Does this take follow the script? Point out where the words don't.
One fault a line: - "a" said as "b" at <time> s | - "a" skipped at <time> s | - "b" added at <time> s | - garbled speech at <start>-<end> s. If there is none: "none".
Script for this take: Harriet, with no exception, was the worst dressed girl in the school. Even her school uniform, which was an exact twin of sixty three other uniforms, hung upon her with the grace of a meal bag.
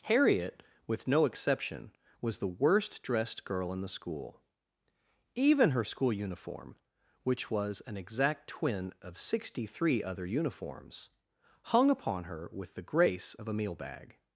none